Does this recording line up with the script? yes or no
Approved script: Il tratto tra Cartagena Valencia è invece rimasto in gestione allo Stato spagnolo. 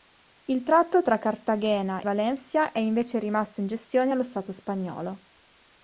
yes